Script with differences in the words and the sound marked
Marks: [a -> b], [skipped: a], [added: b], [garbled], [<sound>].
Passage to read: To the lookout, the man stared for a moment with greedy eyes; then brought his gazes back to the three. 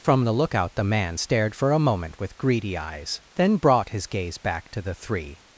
[To -> From] the lookout, the man stared for a moment with greedy eyes; then brought his [gazes -> gaze] back to the three.